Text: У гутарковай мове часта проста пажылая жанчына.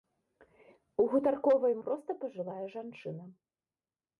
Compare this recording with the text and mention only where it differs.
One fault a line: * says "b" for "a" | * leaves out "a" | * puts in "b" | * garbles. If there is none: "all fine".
* leaves out "мове часта"